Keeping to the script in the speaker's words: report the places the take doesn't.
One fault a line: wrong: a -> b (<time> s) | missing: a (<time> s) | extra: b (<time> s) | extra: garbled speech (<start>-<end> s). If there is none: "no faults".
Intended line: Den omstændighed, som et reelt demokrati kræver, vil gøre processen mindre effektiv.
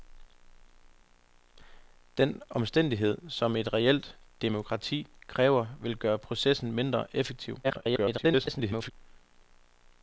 extra: garbled speech (7.6-8.9 s)